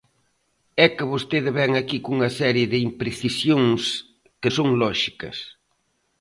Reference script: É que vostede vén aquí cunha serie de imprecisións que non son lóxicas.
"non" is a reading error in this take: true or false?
true